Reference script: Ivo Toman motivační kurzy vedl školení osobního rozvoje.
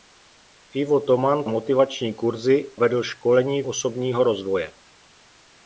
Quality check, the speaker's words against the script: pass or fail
pass